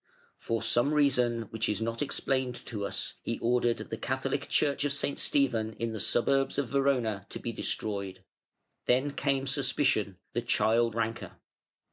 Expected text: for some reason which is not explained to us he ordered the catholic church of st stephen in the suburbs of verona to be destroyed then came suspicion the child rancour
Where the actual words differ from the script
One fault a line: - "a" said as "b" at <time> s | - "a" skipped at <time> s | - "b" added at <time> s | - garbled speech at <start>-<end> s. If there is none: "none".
none